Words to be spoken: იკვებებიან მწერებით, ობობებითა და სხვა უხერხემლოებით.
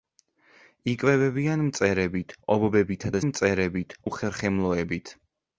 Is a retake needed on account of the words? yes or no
yes